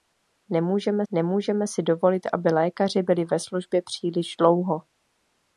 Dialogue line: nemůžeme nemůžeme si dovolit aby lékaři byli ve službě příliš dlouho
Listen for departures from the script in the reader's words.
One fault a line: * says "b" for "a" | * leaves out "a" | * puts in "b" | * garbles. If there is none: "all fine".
all fine